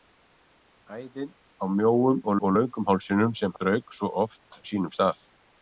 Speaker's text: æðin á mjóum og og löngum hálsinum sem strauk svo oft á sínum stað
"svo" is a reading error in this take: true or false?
false